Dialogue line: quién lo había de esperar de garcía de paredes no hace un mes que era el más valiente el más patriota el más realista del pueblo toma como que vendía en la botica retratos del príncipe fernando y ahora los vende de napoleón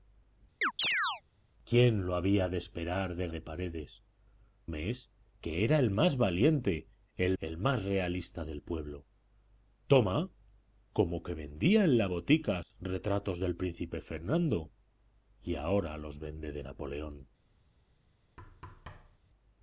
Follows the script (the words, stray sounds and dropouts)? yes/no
no